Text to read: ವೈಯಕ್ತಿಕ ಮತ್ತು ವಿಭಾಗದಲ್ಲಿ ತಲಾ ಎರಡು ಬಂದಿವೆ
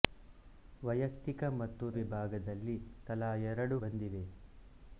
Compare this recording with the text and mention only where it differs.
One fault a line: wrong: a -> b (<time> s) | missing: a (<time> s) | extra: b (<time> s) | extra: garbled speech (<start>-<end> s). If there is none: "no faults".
no faults